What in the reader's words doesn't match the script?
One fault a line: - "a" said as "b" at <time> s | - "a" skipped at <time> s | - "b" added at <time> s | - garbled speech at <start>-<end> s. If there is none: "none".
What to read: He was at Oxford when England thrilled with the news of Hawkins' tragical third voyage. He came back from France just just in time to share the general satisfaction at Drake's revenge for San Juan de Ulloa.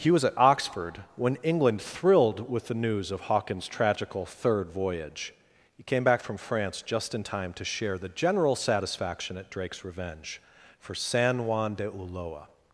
- "just" skipped at 7.1 s